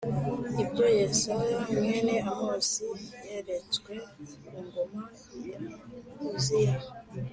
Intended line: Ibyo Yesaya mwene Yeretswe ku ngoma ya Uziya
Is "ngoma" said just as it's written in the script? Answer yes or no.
yes